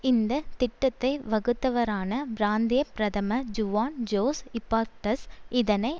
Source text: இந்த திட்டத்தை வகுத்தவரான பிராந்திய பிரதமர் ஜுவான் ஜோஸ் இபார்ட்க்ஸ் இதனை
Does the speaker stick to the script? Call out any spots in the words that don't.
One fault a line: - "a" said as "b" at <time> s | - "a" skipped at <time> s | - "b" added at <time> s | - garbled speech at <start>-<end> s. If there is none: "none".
none